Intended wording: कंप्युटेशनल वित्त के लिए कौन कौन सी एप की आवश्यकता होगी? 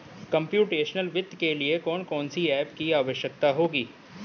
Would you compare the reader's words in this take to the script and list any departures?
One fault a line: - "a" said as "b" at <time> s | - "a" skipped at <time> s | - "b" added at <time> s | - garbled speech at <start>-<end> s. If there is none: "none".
none